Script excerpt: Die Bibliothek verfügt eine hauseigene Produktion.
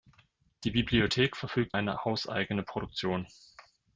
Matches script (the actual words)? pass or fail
pass